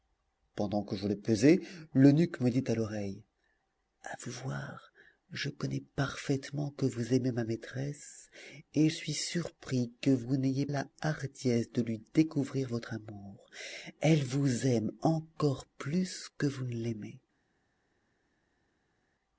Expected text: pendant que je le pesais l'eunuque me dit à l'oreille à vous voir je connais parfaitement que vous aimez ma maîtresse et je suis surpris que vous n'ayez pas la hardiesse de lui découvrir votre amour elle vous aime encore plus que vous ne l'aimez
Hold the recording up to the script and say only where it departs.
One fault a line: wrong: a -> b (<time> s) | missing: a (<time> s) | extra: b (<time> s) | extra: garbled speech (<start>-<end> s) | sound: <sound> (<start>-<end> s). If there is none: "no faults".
missing: je (8.9 s)
missing: pas (10.7 s)